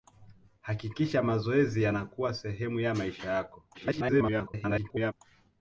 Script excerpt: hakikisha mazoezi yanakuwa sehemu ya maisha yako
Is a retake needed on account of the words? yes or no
yes